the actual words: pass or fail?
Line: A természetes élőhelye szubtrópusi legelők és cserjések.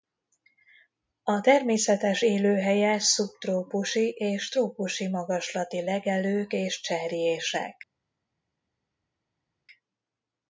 fail